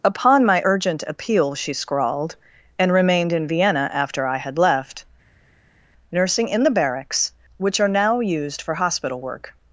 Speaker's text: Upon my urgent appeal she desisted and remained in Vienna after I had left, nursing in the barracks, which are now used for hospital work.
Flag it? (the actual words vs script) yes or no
yes